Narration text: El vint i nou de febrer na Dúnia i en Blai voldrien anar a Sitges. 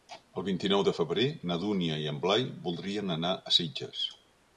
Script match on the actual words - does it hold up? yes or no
yes